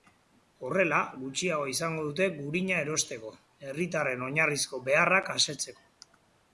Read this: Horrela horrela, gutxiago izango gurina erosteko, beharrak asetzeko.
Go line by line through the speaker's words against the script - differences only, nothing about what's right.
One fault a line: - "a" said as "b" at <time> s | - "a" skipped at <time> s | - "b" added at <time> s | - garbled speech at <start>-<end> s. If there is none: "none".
- "horrela" skipped at 1.0 s
- "dute" added at 2.1 s
- "herritarren oinarrizko" added at 3.7 s